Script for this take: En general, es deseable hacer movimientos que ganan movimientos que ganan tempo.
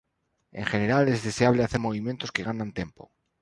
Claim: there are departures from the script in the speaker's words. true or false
true